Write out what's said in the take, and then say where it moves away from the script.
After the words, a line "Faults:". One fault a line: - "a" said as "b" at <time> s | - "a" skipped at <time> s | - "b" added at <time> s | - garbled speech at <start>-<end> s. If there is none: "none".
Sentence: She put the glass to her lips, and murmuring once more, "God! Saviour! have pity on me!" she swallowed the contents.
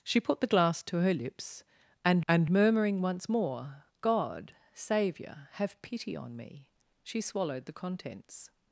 She put the glass to her lips, and and murmuring once more, "God! Saviour! have pity on me!" she swallowed the contents.
Faults:
- "and" added at 2.3 s